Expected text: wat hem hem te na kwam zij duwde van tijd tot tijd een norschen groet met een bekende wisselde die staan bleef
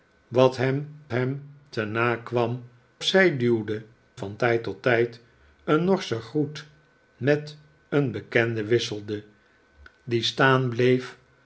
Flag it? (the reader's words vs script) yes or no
no